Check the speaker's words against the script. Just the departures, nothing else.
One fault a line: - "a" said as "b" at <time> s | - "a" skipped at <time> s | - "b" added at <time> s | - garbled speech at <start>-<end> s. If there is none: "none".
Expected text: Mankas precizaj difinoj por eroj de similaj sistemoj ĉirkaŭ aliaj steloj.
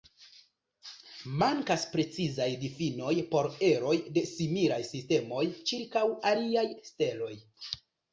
none